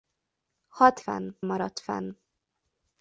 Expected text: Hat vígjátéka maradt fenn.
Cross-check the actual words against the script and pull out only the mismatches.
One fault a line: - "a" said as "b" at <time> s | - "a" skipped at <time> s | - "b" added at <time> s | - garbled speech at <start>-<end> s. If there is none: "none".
- "vígjátéka" said as "fenn" at 1.0 s